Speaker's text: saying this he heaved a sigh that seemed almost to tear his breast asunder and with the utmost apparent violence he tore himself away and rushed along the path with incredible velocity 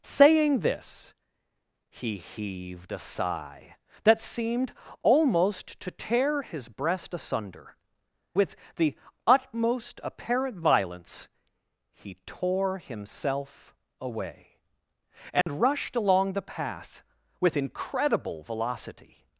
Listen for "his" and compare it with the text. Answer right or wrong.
right